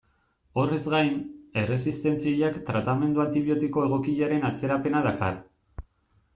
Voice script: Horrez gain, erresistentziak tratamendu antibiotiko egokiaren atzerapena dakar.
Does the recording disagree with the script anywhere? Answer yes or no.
no